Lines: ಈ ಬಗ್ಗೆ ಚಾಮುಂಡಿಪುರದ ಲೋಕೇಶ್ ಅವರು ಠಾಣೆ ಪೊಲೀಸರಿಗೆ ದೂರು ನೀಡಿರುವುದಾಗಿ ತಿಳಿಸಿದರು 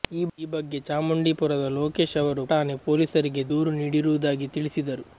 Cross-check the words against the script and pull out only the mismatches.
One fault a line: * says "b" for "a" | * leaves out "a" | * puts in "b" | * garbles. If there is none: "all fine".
all fine